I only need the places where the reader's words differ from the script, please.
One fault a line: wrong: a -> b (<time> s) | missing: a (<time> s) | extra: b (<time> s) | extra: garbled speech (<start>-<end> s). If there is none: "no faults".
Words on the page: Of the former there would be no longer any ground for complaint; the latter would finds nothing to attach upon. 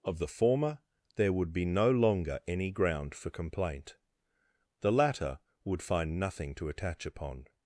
wrong: finds -> find (5.8 s)